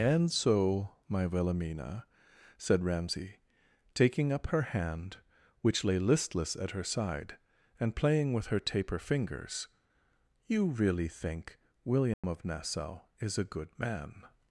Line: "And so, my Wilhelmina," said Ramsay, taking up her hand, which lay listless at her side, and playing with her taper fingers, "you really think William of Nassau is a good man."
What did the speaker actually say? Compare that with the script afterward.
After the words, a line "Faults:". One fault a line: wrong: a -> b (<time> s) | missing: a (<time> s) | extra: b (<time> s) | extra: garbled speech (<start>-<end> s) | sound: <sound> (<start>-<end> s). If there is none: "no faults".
"And so, my Wilhelmina," said Ramsay, taking up her hand, which lay listless at her side, and playing with her taper fingers, "you really think William of Nassau is a good man."
Faults:
sound: dropout (12.1-12.2 s)